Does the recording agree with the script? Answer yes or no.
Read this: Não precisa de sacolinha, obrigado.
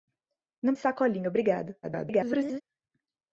no